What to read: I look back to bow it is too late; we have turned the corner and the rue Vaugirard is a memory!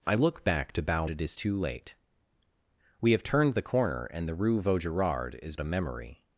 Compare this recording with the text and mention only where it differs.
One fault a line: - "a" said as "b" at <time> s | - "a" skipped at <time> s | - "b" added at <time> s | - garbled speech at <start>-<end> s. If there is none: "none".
none